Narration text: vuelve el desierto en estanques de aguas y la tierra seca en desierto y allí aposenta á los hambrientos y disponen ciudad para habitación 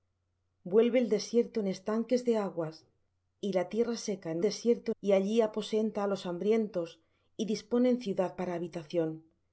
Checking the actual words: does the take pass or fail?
pass